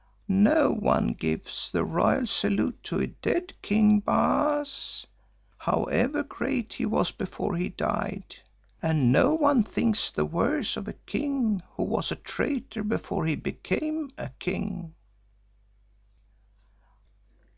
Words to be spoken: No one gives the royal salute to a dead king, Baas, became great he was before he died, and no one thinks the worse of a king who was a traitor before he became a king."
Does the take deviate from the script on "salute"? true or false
false